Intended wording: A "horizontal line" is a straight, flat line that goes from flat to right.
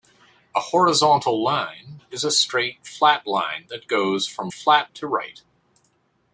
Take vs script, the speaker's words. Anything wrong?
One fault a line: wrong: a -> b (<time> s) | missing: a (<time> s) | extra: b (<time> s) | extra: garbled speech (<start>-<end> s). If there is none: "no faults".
no faults